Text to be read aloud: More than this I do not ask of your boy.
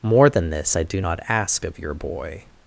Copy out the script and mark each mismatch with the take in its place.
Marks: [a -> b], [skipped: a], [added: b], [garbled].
More than this I do not ask of your boy.